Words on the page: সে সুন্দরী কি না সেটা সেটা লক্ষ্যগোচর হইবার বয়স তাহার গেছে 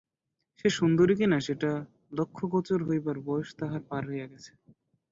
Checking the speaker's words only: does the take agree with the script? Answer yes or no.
no